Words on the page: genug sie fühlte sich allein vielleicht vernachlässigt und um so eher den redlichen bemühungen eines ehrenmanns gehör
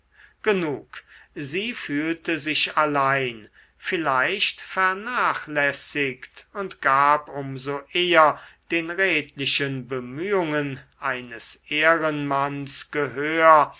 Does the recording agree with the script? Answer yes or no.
no